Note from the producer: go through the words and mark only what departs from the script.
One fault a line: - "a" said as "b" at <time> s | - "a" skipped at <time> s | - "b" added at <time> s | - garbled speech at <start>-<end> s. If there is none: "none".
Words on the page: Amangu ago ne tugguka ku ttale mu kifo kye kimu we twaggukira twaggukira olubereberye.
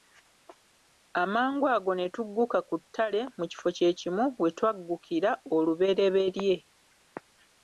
- "twaggukira" skipped at 5.3 s